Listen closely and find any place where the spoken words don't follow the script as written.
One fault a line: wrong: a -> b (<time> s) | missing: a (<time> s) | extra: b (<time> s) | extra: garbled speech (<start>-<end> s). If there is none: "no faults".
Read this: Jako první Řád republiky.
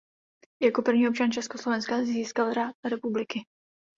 extra: občan Československa získal (1.1 s)